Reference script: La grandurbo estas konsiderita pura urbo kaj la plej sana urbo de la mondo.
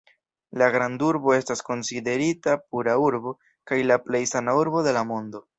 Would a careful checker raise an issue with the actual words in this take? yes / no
no